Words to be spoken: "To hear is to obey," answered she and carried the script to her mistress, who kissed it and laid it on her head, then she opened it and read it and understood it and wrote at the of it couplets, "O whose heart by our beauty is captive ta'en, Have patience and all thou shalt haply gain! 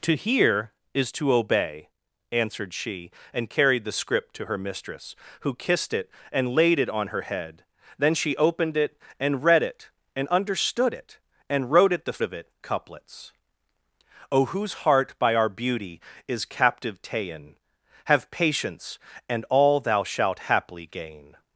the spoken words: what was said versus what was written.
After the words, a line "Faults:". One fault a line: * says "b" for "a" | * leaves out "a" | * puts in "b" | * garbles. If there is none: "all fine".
"To hear is to obey," answered she and carried the script to her mistress, who kissed it and laid it on her head, then she opened it and read it and understood it and wrote at the of it couplets, "O whose heart by our beauty is captive ta'en, Have patience and all thou shalt haply gain!
Faults:
all fine